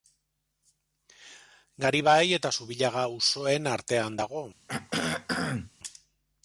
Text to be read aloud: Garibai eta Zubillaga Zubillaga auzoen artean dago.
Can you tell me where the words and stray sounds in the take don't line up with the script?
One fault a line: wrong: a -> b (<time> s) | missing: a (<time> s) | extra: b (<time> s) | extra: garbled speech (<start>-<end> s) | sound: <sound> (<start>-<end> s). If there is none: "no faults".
missing: Zubillaga (3.1 s)
sound: throat clearing (4.7-5.7 s)